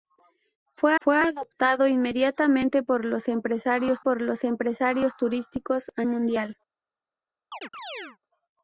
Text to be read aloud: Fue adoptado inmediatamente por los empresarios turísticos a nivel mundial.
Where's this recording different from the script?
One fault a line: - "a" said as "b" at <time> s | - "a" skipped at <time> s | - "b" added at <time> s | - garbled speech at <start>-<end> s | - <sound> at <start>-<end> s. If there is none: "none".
- "fue" added at 1.0 s
- "por los empresarios" added at 4.0 s
- "nivel" skipped at 6.0 s
- chirp at 7.5-8.2 s